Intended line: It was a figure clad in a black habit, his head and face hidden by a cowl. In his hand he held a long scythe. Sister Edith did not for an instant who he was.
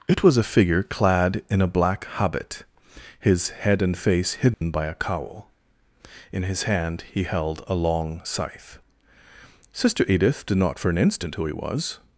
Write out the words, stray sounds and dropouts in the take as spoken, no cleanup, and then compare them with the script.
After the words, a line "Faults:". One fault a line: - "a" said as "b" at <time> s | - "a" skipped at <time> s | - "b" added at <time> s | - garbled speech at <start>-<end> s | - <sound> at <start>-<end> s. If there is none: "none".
It was a figure clad in a black habit, his head and face hidden by a cowl. In his hand he held a long scythe. Sister Edith did not for an instant who he was.
Faults:
- dropout at 4.5-4.6 s